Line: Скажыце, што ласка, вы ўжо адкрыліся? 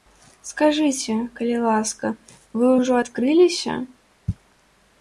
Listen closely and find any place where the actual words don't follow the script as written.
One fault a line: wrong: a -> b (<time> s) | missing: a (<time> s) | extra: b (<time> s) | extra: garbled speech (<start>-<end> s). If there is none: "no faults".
wrong: што -> калі (1.4 s)